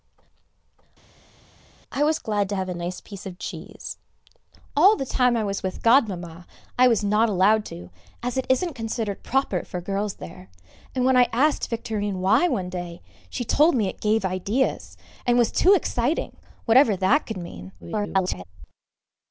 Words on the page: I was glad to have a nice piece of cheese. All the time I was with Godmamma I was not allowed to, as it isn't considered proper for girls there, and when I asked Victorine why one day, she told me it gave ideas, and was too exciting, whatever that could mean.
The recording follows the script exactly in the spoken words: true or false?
false